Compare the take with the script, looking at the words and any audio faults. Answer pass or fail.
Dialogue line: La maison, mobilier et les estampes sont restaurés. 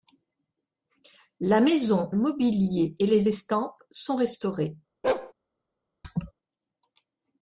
fail